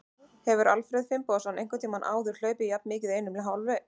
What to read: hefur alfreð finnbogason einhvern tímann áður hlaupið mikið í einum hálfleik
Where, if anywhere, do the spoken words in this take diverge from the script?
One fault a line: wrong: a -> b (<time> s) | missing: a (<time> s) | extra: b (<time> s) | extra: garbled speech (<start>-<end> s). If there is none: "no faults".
extra: jafn (2.7 s)